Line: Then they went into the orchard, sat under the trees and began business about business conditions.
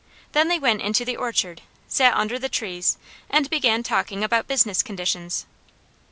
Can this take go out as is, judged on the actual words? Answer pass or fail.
fail